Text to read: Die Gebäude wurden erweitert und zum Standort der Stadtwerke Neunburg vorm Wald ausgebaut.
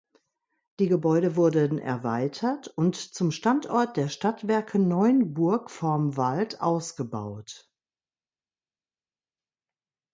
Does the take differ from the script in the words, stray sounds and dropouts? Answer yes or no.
no